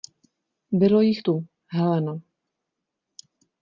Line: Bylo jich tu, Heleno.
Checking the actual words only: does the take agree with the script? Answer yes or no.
yes